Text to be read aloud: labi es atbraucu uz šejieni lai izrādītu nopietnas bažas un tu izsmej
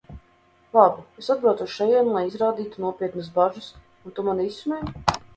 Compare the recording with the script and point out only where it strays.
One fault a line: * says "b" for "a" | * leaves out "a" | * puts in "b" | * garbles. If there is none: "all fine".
* puts in "mani"